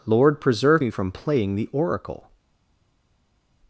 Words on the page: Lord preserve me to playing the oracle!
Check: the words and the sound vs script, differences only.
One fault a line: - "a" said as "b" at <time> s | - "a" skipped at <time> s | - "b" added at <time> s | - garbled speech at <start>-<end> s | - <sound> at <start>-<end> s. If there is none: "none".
- "to" said as "from" at 0.9 s